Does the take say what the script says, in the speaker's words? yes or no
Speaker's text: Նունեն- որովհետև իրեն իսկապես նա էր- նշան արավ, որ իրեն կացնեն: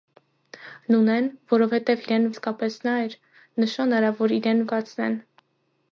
yes